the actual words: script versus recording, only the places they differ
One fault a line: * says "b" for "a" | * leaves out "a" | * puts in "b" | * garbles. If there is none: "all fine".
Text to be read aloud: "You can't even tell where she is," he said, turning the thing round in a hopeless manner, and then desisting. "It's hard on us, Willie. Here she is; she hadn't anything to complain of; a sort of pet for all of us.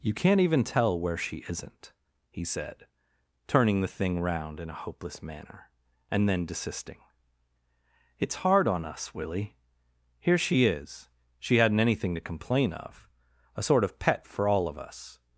* says "isn't" for "is"